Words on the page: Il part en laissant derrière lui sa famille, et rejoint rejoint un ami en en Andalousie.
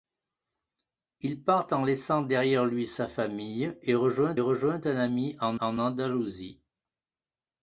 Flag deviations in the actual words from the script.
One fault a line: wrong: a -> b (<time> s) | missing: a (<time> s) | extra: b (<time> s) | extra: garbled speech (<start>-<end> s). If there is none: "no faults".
no faults